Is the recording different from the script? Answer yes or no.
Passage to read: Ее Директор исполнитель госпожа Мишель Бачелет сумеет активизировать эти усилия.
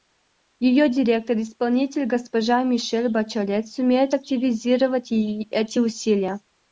no